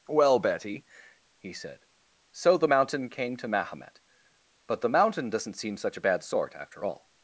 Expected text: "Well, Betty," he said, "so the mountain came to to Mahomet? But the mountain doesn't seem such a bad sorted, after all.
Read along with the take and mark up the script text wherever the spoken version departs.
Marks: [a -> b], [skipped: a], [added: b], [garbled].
"Well, Betty," he said, "so the mountain came to [skipped: to] Mahomet? But the mountain doesn't seem such a bad [sorted, -> sort] after all.